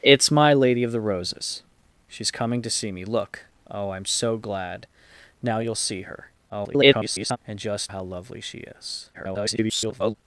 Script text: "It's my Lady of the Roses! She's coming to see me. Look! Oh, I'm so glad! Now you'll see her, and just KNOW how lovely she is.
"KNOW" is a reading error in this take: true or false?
true